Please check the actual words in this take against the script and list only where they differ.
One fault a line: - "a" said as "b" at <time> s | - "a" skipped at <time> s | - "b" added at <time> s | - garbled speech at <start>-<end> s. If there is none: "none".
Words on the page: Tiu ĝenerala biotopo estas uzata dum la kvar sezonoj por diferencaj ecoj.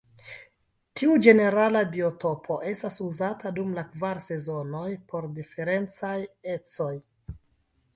none